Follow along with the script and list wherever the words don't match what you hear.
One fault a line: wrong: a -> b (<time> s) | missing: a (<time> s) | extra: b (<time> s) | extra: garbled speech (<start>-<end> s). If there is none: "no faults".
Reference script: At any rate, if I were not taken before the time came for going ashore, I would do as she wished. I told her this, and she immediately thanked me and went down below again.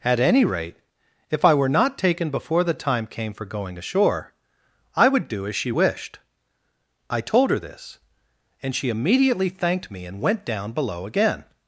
no faults